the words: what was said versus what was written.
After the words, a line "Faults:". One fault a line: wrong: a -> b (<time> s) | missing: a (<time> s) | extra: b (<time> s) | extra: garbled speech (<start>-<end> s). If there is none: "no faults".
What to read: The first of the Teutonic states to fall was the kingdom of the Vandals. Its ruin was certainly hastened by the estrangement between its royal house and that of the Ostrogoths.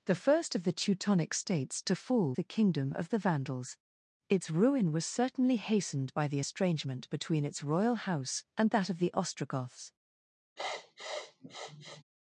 The first of the Teutonic states to fall the kingdom of the Vandals. Its ruin was certainly hastened by the estrangement between its royal house and that of the Ostrogoths.
Faults:
missing: was (2.3 s)